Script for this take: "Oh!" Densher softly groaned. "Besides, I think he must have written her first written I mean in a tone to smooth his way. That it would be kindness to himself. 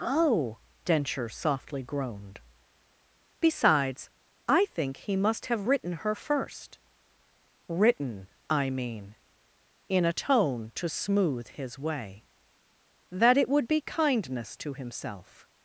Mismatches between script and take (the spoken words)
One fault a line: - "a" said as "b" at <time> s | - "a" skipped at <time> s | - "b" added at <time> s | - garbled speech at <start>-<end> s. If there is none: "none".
none